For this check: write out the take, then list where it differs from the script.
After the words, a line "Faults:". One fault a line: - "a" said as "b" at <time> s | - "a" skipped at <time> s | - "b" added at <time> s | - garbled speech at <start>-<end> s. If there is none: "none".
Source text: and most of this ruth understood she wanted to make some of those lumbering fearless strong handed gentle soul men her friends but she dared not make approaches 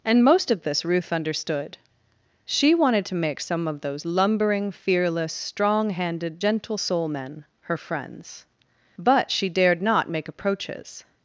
and most of this ruth understood she wanted to make some of those lumbering fearless strong handed gentle soul men her friends but she dared not make approaches
Faults:
none